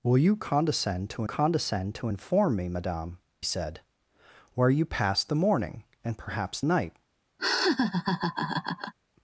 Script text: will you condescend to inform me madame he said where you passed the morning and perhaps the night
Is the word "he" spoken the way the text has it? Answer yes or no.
no